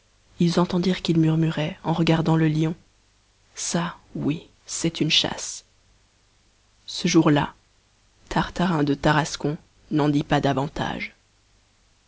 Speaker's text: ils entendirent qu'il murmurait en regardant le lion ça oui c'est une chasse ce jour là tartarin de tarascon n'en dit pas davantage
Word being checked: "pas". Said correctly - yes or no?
yes